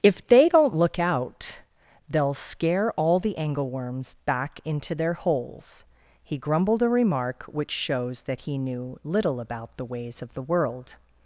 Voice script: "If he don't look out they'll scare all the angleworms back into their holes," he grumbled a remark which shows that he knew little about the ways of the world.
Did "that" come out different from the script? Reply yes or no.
no